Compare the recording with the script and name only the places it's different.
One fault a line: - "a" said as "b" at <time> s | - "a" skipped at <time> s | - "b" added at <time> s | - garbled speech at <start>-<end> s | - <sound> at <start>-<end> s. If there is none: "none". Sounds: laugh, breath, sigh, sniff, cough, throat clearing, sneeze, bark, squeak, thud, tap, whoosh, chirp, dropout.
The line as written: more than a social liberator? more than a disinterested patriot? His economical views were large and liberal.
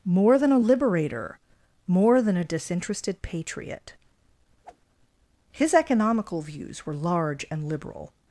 - "social" skipped at 0.6 s
- whoosh at 4.6-4.8 s